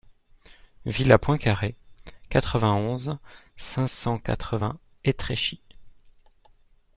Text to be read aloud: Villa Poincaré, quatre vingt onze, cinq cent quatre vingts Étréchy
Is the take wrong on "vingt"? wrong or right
right